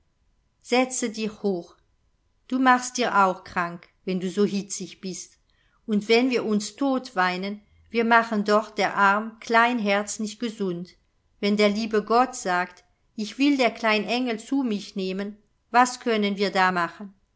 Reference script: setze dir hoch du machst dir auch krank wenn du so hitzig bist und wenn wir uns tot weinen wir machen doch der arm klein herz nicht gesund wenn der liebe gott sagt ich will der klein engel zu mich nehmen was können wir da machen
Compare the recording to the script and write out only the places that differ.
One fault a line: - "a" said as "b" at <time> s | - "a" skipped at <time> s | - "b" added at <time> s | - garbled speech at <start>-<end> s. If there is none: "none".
none